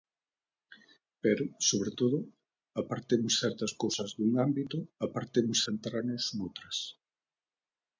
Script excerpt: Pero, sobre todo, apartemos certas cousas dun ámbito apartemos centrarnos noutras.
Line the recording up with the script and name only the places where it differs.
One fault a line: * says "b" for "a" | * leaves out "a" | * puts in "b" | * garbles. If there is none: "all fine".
all fine